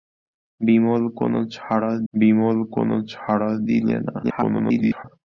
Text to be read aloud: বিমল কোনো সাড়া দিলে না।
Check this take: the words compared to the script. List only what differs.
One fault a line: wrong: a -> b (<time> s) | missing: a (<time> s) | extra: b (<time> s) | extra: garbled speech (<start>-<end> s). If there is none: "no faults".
extra: বিমল কোনো সাড়া (2.1 s)
extra: garbled speech (4.2-5.0 s)